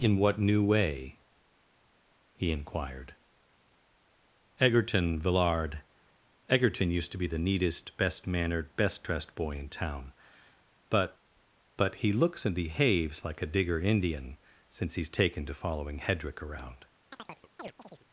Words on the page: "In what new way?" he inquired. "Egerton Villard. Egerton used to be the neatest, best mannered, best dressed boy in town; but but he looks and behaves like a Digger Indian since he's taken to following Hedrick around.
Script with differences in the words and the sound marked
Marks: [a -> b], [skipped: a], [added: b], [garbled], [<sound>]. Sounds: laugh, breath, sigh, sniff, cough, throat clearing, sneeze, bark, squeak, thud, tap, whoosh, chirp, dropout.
"In what new way?" he inquired. "Egerton Villard. Egerton used to be the neatest, best mannered, best dressed boy in town; but but he looks and behaves like a Digger Indian since he's taken to following Hedrick around. [chirp]